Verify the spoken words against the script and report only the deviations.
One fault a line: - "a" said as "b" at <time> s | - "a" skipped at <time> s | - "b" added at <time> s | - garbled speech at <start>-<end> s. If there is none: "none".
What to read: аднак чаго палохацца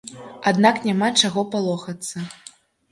- "няма" added at 0.9 s